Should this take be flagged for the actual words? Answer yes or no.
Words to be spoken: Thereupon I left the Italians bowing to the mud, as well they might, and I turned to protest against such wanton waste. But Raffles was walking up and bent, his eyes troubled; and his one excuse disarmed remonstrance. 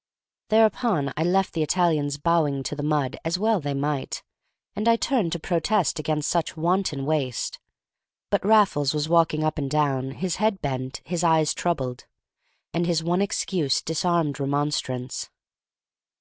yes